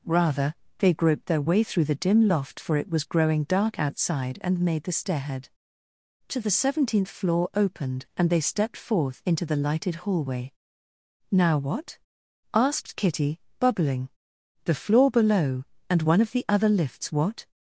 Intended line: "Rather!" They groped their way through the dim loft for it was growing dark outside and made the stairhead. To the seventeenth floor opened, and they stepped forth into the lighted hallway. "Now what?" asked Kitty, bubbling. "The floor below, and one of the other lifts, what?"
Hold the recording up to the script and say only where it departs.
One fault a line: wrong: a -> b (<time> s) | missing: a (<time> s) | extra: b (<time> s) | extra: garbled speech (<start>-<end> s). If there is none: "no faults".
no faults